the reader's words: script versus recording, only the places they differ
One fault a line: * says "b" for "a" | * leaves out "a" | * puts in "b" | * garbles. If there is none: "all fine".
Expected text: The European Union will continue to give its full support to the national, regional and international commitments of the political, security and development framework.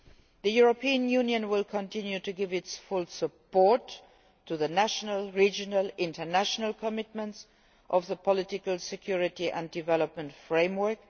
all fine